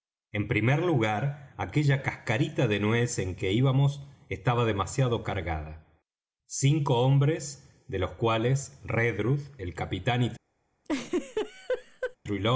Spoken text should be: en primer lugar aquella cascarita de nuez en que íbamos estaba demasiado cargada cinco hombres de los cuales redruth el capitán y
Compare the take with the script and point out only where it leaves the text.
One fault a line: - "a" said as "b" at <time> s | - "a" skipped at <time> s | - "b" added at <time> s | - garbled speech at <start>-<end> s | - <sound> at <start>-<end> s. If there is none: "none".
- laugh at 10.8-12.2 s